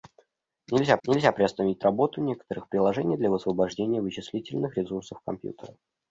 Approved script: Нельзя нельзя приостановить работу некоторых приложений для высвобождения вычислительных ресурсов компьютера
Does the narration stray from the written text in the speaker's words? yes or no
no